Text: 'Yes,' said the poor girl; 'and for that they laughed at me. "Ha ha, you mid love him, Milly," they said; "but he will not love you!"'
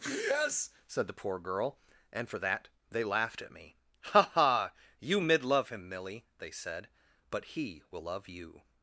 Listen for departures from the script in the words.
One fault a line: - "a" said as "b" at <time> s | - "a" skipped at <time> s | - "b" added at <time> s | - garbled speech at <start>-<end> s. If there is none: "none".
- "not" skipped at 8.0 s